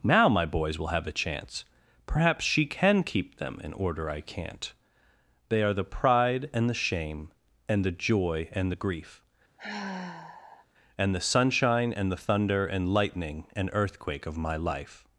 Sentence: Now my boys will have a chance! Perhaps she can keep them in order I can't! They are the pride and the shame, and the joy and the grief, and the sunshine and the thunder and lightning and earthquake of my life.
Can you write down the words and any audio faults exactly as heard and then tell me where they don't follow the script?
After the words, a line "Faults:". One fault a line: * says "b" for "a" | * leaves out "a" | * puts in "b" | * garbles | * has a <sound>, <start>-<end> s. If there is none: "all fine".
Now my boys will have a chance! Perhaps she can keep them in order I can't! They are the pride and the shame, and the joy and the grief, and the sunshine and the thunder and lightning and earthquake of my life.
Faults:
* has a sigh, 9.6-10.7 s